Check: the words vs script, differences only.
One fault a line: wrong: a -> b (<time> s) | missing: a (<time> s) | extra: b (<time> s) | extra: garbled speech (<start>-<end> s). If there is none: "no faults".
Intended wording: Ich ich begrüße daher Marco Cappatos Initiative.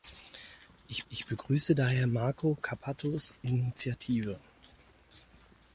no faults